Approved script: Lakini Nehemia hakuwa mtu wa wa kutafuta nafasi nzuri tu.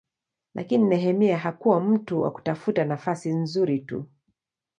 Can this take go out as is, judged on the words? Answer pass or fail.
fail